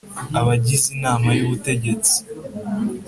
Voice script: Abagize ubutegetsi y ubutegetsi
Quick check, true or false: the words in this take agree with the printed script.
false